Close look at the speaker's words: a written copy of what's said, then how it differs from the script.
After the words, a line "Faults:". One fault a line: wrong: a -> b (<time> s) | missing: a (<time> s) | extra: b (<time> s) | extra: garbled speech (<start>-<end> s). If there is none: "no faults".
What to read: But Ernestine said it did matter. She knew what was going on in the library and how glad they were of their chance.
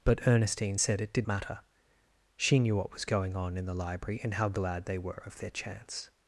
But Ernestine said it did matter. She knew what was going on in the library and how glad they were of their chance.
Faults:
no faults